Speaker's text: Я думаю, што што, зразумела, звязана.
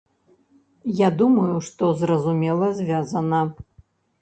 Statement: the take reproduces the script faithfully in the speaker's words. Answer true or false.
false